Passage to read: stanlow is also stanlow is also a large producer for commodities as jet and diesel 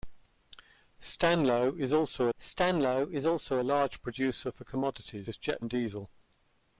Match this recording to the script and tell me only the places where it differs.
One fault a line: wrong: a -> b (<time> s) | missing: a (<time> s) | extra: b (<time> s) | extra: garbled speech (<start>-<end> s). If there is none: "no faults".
no faults